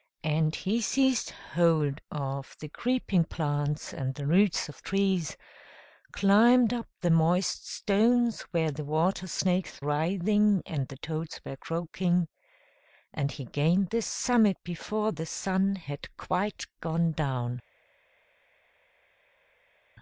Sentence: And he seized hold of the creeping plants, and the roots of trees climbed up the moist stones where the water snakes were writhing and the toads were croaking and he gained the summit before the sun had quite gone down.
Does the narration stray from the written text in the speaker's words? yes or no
yes